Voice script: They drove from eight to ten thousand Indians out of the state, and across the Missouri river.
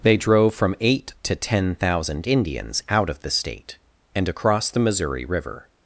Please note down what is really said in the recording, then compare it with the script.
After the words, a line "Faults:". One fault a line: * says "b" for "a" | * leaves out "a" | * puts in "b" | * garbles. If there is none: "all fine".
They drove from eight to ten thousand Indians out of the state, and across the Missouri river.
Faults:
all fine